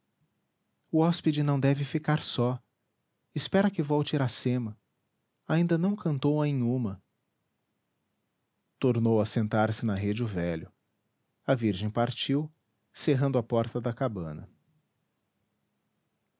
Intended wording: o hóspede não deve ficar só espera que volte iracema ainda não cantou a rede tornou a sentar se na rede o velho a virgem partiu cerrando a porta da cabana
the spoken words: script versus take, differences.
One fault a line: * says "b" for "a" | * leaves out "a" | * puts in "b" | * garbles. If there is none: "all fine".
* says "inhuma" for "rede"